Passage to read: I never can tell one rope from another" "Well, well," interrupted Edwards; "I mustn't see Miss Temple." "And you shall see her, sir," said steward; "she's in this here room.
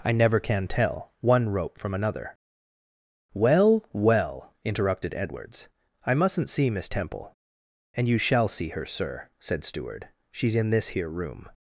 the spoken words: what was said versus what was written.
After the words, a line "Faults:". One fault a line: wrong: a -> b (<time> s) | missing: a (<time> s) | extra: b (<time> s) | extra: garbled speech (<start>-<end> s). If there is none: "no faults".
I never can tell one rope from another" "Well, well," interrupted Edwards; "I mustn't see Miss Temple." "And you shall see her, sir," said steward; "she's in this here room.
Faults:
no faults